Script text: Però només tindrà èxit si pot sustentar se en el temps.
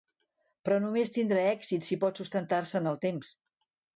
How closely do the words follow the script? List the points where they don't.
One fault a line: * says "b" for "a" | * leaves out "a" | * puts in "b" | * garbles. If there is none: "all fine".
all fine